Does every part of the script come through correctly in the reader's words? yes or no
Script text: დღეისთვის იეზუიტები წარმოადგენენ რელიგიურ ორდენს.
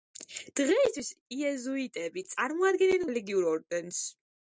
yes